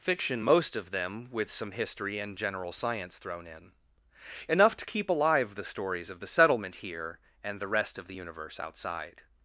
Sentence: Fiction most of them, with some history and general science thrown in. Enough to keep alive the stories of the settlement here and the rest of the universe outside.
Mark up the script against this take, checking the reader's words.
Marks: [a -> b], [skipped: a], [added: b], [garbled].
Fiction most of them, with some history and general science thrown in. Enough to keep alive the stories of the settlement here and the rest of the universe outside.